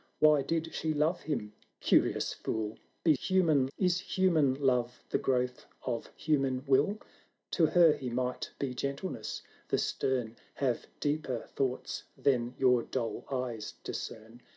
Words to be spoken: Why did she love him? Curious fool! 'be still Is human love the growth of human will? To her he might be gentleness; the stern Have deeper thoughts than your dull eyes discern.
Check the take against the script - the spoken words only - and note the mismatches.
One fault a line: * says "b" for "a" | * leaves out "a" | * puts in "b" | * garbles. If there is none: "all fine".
* says "human" for "still"